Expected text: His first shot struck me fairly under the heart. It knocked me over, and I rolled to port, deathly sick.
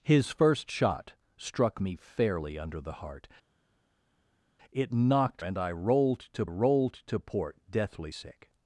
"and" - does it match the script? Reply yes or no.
no